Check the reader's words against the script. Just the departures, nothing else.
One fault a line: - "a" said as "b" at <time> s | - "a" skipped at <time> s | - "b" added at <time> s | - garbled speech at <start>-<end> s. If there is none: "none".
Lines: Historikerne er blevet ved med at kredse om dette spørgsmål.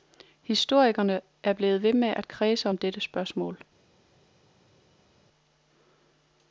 none